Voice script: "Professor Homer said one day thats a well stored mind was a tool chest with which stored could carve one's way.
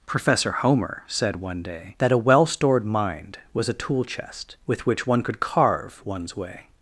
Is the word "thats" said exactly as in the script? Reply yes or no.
no